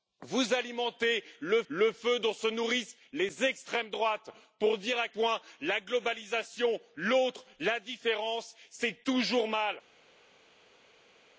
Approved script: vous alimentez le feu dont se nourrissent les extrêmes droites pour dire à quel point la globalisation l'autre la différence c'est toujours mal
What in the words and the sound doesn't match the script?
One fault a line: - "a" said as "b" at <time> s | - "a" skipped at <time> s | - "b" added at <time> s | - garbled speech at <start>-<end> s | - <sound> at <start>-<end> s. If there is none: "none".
- "le" added at 1.7 s
- "quel" skipped at 5.1 s